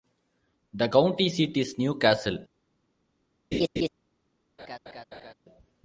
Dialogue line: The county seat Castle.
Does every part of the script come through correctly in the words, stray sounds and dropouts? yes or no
no